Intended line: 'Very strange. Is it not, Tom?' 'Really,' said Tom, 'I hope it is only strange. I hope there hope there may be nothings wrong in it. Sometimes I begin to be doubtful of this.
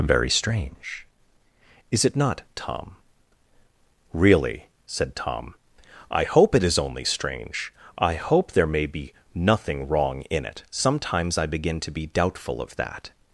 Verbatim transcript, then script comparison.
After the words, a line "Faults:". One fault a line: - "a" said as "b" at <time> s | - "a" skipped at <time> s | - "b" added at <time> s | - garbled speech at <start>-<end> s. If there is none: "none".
'Very strange. Is it not, Tom?' 'Really,' said Tom, 'I hope it is only strange. I hope there may be nothing wrong in it. Sometimes I begin to be doubtful of that.
Faults:
- "hope there" skipped at 8.7 s
- "nothings" said as "nothing" at 9.3 s
- "this" said as "that" at 12.8 s